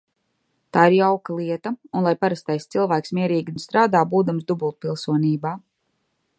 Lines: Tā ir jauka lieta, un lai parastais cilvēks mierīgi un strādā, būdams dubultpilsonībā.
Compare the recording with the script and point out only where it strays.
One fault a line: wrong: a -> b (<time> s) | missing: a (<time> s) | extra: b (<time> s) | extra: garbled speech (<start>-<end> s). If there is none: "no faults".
no faults